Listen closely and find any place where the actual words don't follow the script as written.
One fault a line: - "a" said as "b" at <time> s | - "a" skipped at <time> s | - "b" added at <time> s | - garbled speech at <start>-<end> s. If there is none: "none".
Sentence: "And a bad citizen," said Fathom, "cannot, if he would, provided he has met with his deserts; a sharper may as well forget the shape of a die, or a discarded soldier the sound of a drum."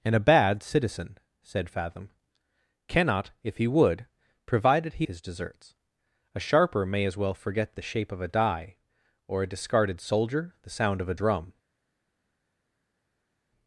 - "has met with" skipped at 5.1 s